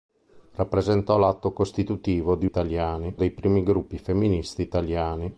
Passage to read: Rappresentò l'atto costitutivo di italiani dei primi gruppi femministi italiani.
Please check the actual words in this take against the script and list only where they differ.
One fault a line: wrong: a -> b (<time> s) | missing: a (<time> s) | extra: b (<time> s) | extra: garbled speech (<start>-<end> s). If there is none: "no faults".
no faults